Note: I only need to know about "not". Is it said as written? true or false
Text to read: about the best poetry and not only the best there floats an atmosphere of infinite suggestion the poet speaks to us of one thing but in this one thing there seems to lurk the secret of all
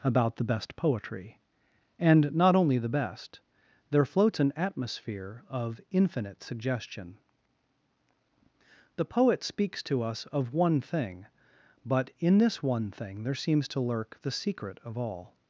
true